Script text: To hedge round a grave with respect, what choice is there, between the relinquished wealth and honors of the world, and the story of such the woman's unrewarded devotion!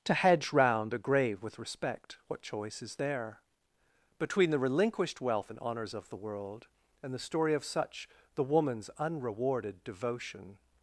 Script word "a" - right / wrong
right